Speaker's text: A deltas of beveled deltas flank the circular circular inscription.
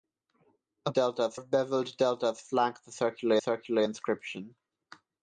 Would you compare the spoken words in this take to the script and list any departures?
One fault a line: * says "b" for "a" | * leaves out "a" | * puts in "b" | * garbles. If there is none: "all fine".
all fine